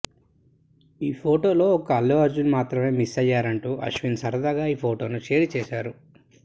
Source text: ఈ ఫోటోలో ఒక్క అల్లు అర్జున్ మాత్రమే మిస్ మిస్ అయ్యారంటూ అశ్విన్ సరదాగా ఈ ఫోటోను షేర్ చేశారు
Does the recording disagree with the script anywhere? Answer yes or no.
yes